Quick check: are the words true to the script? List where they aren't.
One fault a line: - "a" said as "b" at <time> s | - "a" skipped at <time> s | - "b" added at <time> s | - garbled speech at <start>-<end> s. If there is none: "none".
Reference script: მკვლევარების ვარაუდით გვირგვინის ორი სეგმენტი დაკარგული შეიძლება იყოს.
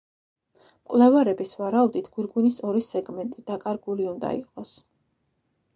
- "შეიძლება" said as "უნდა" at 4.1 s